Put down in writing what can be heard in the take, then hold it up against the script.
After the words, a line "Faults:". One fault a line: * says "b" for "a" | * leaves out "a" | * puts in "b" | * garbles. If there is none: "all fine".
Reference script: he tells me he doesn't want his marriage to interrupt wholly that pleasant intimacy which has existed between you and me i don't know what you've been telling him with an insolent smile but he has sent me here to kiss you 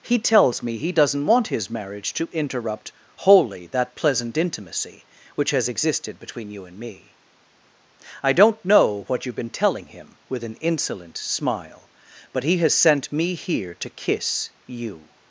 he tells me he doesn't want his marriage to interrupt wholly that pleasant intimacy which has existed between you and me i don't know what you've been telling him with an insolent smile but he has sent me here to kiss you
Faults:
all fine